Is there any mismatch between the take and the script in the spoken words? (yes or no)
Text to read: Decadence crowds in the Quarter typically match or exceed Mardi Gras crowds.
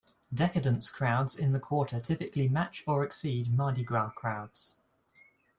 no